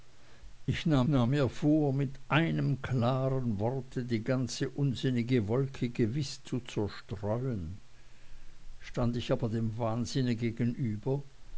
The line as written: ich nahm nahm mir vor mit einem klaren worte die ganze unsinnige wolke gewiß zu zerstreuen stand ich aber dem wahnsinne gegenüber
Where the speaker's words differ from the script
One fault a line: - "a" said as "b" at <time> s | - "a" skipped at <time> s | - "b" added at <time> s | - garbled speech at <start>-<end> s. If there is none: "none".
none